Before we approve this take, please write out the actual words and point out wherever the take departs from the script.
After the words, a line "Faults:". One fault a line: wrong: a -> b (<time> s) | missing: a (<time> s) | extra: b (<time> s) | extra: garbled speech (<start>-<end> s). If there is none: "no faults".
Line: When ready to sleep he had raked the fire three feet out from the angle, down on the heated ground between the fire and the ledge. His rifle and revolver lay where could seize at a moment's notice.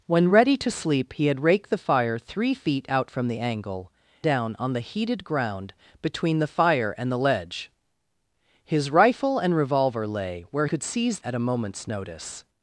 When ready to sleep he had raked the fire three feet out from the angle, down on the heated ground between the fire and the ledge. His rifle and revolver lay where could seize at a moment's notice.
Faults:
no faults